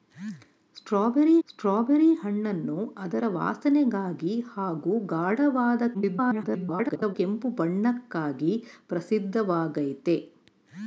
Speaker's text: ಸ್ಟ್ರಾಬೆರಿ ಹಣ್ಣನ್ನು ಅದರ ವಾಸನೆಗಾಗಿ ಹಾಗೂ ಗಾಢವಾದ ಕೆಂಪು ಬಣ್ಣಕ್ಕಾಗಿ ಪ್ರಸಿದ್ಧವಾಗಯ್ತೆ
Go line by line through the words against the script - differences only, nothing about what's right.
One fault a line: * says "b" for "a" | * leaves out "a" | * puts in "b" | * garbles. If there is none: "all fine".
* puts in "ಸ್ಟ್ರಾಬೆರಿ"
* garbles